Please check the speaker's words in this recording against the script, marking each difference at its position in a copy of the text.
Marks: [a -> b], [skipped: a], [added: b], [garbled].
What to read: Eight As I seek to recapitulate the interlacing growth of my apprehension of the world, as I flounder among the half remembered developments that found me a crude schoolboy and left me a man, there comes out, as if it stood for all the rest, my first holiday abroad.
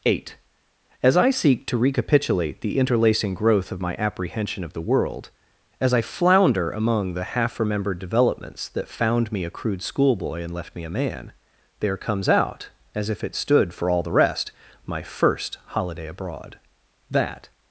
Eight As I seek to recapitulate the interlacing growth of my apprehension of the world, as I flounder among the half remembered developments that found me a crude schoolboy and left me a man, there comes out, as if it stood for all the rest, my first holiday abroad. [added: That]